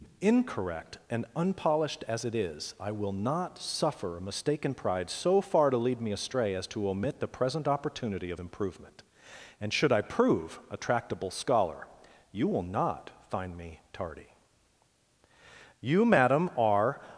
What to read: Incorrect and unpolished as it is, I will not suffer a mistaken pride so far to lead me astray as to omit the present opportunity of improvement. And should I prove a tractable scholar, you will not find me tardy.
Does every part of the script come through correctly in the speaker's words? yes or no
no